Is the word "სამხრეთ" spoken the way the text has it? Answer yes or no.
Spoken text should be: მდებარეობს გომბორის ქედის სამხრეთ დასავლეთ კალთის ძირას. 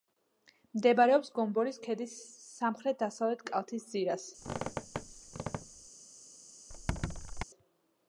yes